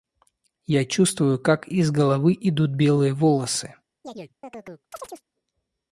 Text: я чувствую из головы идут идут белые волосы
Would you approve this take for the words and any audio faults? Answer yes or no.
no